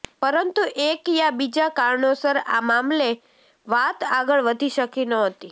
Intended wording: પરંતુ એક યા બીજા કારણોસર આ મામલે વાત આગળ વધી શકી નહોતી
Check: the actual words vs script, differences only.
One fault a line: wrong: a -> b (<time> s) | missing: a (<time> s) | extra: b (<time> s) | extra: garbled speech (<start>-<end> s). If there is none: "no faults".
no faults